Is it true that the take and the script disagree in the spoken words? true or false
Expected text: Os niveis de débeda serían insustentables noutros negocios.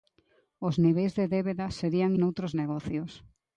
true